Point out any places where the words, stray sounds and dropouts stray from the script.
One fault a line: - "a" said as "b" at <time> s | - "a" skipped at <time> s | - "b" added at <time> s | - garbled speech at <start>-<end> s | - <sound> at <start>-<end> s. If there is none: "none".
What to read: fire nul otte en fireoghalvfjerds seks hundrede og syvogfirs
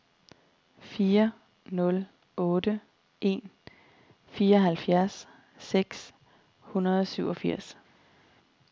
none